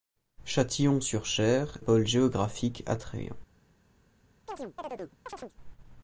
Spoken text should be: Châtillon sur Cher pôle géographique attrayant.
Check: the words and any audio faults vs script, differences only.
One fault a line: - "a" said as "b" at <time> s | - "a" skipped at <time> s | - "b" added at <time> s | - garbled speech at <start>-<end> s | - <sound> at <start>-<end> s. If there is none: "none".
- chirp at 4.5-5.6 s